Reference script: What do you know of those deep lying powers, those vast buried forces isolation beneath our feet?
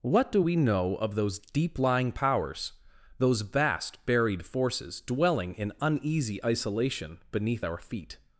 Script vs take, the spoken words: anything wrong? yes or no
yes